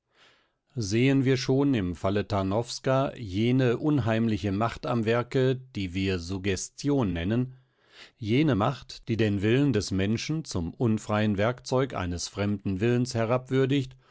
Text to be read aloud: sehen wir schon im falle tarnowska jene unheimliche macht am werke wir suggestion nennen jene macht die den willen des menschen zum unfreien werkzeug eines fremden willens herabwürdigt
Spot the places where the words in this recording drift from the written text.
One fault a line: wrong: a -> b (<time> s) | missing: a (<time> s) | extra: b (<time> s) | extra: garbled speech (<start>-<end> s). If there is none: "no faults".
extra: die (5.8 s)